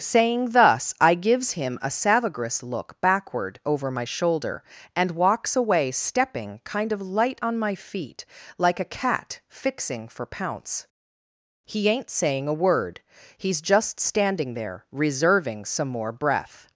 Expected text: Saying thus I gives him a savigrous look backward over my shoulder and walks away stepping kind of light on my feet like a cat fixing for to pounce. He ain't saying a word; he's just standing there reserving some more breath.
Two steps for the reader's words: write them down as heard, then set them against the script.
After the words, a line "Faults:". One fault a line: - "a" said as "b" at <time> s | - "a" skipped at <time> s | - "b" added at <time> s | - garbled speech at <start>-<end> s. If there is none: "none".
Saying thus I gives him a savigrous look backward over my shoulder and walks away stepping kind of light on my feet like a cat fixing for pounce. He ain't saying a word; he's just standing there reserving some more breath.
Faults:
- "to" skipped at 10.2 s